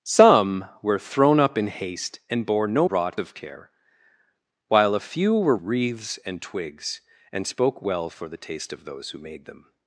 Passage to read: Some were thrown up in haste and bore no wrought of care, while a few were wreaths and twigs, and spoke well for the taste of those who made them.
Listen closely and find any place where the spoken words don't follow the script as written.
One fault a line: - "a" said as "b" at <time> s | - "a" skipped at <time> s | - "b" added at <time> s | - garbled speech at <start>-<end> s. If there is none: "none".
none